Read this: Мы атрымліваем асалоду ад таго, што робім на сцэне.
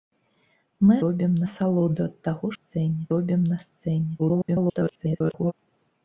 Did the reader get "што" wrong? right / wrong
wrong